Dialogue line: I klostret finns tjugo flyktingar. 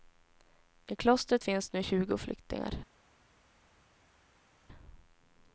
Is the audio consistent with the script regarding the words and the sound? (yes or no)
no